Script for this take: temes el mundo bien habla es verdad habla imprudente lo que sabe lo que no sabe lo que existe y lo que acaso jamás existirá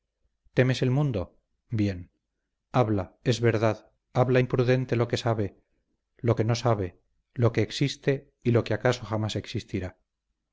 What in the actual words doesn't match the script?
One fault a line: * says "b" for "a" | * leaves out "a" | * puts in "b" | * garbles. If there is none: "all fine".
all fine